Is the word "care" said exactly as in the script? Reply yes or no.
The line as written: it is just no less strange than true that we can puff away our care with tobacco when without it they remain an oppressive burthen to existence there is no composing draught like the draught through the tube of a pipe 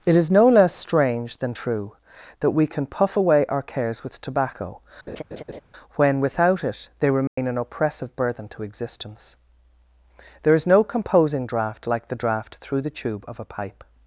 no